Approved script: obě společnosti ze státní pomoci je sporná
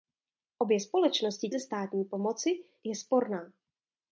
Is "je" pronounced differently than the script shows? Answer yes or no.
no